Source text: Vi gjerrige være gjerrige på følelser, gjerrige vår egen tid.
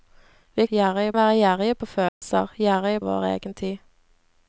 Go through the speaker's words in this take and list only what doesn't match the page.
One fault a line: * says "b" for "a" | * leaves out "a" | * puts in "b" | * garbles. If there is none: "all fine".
all fine